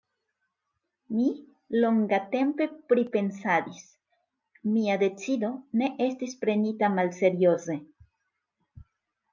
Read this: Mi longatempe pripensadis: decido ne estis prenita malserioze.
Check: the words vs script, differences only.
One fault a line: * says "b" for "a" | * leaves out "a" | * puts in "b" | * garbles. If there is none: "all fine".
* puts in "mia"